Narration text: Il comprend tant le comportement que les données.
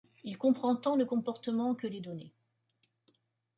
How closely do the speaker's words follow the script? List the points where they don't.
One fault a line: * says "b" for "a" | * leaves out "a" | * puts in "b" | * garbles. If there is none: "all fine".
all fine